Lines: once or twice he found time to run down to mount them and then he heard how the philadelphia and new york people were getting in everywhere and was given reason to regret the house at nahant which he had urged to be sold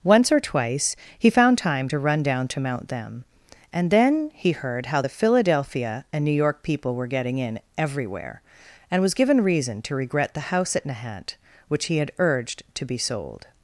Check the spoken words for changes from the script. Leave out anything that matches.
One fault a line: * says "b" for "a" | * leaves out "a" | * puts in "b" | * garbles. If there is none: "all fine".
all fine